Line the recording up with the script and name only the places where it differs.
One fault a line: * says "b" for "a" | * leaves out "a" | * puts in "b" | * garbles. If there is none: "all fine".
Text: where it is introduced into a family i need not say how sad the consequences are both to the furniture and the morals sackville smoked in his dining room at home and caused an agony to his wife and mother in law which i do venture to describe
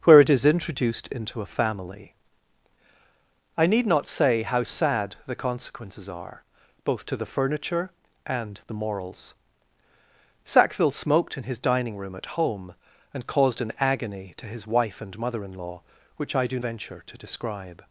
all fine